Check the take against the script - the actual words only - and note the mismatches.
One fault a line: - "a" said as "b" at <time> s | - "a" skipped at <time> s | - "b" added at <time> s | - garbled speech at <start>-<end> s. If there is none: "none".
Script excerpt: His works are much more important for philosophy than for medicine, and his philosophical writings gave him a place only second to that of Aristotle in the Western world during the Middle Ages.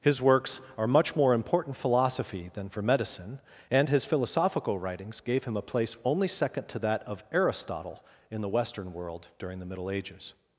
- "for" skipped at 1.8 s